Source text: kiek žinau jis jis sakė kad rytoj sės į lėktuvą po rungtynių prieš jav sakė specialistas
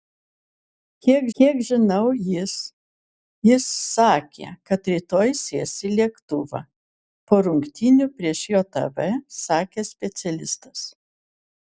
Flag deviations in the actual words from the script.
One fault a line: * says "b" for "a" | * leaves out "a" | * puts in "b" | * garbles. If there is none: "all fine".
* puts in "kiek"